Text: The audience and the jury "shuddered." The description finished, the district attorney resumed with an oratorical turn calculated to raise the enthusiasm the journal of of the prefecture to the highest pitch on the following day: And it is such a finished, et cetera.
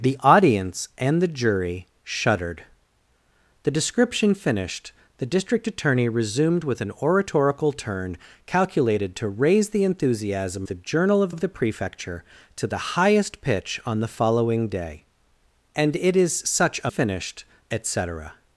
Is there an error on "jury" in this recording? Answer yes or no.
no